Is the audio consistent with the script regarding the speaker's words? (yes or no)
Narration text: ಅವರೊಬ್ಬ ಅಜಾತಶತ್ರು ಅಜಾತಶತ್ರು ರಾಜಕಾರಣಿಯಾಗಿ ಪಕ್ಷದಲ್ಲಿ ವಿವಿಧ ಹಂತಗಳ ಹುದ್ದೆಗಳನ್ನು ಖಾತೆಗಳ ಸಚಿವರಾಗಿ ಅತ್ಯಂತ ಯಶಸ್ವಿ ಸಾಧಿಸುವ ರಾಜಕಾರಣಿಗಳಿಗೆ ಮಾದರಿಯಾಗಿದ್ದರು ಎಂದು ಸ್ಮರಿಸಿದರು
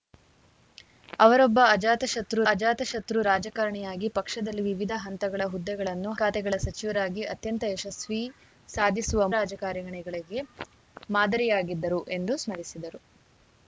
yes